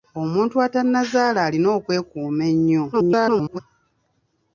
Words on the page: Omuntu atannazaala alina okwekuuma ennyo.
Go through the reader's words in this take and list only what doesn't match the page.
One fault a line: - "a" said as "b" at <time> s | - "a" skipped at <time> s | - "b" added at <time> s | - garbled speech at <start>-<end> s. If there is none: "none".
- garbled speech at 2.9-3.6 s